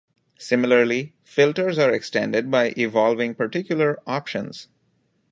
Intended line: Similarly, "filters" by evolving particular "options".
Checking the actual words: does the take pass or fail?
fail